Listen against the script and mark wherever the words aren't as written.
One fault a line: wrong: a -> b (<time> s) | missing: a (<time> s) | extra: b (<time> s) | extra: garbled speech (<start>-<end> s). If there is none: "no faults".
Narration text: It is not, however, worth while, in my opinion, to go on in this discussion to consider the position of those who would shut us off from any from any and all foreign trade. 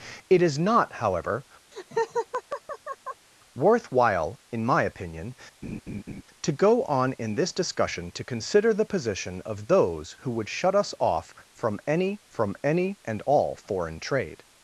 no faults